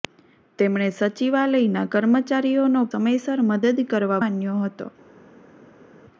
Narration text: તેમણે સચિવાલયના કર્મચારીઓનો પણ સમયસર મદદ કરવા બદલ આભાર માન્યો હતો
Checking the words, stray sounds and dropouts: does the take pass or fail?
fail